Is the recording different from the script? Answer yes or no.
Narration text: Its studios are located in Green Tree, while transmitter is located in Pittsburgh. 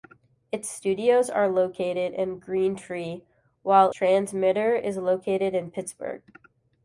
no